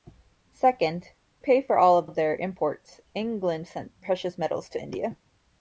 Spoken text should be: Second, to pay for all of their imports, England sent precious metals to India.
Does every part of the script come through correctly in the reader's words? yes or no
no